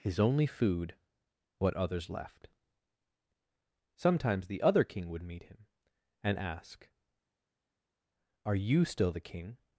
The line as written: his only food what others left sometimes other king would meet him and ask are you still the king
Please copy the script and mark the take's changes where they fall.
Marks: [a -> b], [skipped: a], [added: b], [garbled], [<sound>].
his only food what others left sometimes [added: the] other king would meet him and ask are you still the king